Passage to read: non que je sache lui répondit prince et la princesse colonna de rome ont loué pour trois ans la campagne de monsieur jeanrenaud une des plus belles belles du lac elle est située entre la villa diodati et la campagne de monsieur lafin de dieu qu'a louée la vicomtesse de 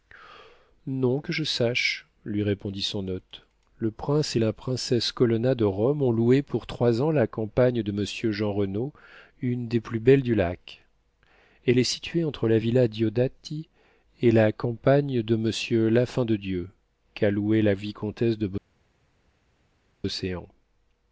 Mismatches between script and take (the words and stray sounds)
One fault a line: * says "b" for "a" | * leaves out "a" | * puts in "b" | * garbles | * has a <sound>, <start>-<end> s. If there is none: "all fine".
* puts in "son hôte le"
* leaves out "belles"